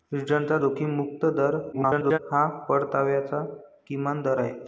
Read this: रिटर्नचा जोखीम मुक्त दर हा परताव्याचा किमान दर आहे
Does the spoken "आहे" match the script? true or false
true